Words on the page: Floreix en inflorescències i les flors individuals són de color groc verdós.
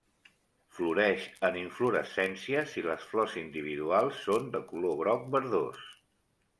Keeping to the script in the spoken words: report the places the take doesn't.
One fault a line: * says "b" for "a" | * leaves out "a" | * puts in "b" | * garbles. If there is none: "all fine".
all fine